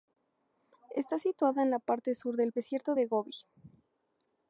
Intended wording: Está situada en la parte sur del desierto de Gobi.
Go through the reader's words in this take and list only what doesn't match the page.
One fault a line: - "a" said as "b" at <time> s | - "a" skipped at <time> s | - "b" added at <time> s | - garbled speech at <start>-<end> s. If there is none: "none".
none